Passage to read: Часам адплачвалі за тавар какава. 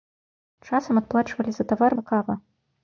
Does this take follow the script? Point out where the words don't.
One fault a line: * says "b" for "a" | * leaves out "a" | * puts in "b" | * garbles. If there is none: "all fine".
all fine